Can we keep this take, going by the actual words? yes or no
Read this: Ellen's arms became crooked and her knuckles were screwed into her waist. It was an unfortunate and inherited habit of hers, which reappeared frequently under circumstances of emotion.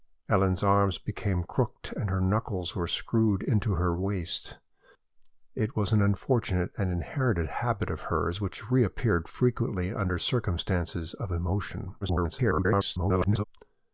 no